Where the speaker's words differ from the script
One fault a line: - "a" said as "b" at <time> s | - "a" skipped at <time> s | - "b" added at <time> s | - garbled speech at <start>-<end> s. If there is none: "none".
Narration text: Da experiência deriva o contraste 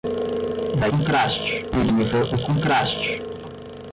- "experiência" said as "contraste" at 0.9 s